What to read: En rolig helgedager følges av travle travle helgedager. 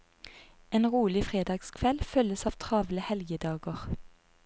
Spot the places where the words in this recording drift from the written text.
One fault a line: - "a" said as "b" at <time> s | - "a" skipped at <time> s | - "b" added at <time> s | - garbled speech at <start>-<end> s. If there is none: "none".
- "helgedager" said as "fredagskveld" at 1.2 s
- "travle" skipped at 3.1 s